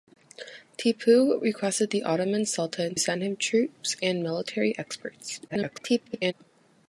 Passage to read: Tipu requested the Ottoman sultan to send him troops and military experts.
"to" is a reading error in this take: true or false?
true